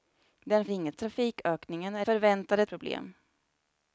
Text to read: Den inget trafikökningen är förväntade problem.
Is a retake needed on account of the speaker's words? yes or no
no